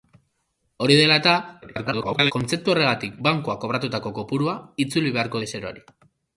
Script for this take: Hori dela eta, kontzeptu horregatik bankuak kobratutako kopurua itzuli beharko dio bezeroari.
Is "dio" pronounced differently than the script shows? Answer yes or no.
yes